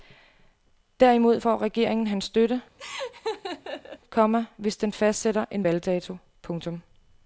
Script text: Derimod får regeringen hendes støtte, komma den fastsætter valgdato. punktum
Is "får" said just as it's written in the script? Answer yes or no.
yes